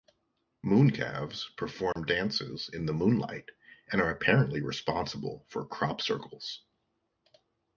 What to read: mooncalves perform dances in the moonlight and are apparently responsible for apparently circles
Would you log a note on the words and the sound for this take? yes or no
yes